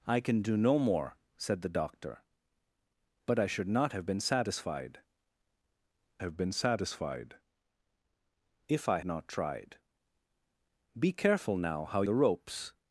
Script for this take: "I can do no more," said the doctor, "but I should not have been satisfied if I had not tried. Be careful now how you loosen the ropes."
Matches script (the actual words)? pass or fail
fail